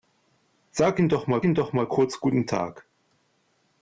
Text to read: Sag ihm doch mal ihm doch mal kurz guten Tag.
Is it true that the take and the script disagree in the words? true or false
false